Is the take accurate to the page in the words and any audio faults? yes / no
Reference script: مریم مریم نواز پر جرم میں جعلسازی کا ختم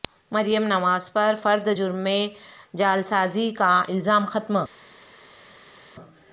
no